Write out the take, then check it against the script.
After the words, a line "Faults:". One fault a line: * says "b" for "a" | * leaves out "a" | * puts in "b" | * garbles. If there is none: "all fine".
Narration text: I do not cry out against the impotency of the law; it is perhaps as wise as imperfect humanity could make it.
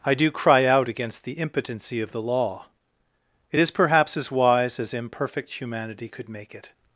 I do cry out against the impotency of the law; it is perhaps as wise as imperfect humanity could make it.
Faults:
* leaves out "not"